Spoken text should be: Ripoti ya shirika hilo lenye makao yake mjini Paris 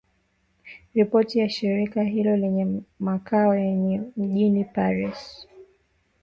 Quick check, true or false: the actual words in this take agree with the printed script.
true